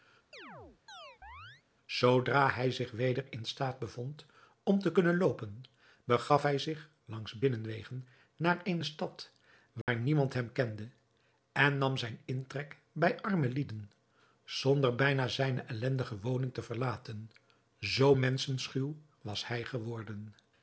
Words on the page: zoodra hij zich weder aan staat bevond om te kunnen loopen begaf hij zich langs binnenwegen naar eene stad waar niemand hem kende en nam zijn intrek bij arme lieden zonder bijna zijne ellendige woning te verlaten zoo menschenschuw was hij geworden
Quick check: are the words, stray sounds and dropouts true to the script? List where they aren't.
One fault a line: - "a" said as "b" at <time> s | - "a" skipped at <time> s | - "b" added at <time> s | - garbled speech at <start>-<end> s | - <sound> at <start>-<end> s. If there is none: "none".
- chirp at 0.3-1.6 s
- "aan" said as "in" at 3.3 s
- dropout at 9.8-9.9 s